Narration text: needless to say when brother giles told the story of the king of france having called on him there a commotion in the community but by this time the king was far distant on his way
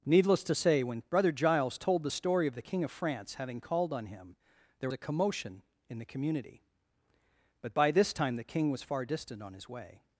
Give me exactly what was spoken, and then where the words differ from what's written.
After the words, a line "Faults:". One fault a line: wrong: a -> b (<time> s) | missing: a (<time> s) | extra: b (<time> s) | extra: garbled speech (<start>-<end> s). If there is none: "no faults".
needless to say when brother giles told the story of the king of france having called on him there a commotion in the community but by this time the king was far distant on his way
Faults:
no faults